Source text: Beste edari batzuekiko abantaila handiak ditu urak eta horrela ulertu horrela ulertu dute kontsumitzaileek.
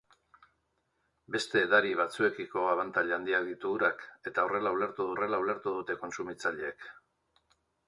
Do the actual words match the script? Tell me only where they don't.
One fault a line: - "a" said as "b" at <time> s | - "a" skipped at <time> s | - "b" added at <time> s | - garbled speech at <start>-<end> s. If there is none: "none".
none